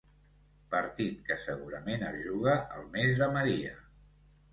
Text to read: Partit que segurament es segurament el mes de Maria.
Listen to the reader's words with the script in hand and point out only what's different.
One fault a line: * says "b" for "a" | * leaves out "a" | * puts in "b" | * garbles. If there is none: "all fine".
* says "juga" for "segurament"